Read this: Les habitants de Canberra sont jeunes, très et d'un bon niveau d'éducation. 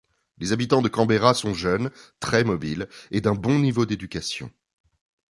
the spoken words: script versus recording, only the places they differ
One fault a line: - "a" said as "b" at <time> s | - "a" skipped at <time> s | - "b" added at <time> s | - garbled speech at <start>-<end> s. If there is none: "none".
- "mobiles" added at 2.4 s